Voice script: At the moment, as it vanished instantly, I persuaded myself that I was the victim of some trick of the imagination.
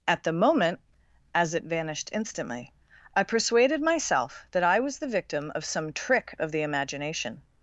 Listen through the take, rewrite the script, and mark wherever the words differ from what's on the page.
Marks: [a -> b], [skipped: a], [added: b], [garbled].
At the moment, as it vanished instantly, I persuaded myself that I was the victim of some trick of the imagination.